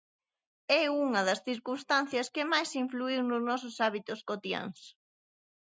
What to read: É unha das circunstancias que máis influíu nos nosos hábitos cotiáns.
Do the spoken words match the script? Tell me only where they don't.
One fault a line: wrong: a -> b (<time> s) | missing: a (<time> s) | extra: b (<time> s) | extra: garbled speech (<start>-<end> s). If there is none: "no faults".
no faults